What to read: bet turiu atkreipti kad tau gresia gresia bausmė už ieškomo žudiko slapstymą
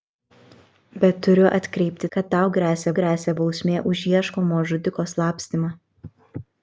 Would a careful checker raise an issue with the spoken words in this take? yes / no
no